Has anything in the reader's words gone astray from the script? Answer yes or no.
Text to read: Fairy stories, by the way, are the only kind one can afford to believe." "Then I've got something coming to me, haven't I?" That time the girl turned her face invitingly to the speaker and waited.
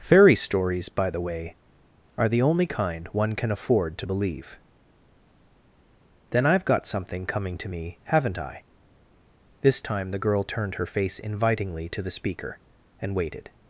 yes